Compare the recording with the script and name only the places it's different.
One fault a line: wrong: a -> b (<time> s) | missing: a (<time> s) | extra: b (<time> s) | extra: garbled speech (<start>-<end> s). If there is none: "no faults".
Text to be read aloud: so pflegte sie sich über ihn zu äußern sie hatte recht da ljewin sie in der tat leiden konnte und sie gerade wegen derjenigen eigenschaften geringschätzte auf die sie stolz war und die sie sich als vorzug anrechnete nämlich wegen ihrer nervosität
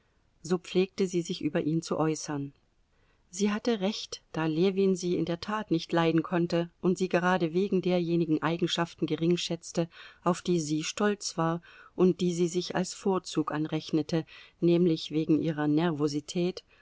extra: nicht (5.7 s)